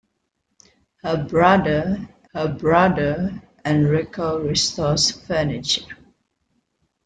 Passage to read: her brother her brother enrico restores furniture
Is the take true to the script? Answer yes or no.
yes